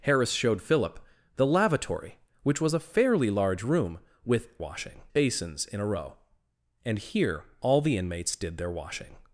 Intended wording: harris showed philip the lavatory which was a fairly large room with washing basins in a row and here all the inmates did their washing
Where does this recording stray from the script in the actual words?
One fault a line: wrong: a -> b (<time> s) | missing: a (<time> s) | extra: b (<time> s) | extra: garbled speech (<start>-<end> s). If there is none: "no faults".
no faults